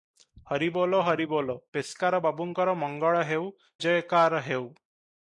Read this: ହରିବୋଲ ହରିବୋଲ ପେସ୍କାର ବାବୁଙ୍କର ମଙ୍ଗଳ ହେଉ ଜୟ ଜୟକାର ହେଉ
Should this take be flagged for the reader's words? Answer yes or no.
yes